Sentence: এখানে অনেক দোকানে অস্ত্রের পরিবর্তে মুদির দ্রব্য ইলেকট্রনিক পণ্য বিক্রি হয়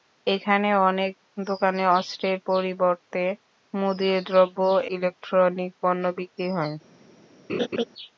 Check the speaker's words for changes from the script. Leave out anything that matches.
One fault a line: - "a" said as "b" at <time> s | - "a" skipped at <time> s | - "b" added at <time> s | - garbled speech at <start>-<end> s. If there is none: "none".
none